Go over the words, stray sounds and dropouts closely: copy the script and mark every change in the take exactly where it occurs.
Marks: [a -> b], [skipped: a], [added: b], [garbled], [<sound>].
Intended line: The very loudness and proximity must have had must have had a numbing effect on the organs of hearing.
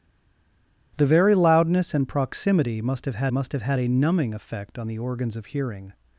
The very loudness and proximity must have had must have had a numbing effect on the organs of hearing.